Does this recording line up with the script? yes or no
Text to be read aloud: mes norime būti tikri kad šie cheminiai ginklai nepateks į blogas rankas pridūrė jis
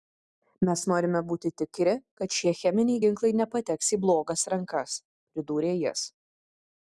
yes